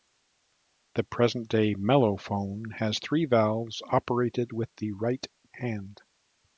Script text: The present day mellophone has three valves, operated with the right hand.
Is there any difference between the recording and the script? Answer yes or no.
no